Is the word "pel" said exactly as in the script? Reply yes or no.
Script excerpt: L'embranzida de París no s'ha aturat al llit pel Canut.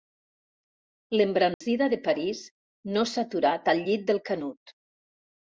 no